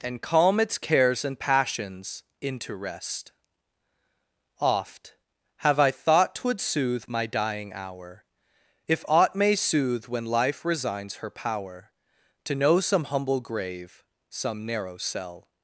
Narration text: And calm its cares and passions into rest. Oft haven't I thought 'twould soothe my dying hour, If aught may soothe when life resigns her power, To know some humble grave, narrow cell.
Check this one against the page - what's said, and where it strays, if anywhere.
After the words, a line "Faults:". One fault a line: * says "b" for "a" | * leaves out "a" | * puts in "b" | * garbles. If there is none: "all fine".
And calm its cares and passions into rest. Oft have I thought 'twould soothe my dying hour, If aught may soothe when life resigns her power, To know some humble grave, some narrow cell.
Faults:
* says "have" for "haven't"
* puts in "some"